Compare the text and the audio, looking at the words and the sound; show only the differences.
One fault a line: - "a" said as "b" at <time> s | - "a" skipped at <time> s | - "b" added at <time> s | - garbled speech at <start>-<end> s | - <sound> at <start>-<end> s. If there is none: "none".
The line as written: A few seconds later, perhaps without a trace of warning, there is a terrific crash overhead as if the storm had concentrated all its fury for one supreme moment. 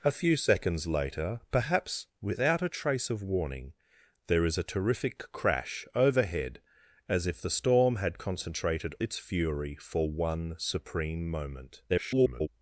- "all" skipped at 8.9 s
- garbled speech at 11.9-12.5 s